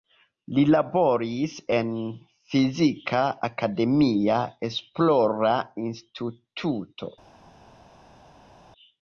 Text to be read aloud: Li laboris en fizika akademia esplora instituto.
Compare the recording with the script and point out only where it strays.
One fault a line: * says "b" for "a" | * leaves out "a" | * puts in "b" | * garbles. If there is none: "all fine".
all fine